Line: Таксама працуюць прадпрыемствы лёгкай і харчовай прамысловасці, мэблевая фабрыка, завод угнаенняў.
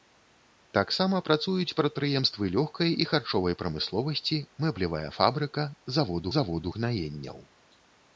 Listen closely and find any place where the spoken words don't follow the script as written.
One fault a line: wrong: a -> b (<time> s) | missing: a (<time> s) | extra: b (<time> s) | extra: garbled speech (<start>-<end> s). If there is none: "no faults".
extra: завод (6.4 s)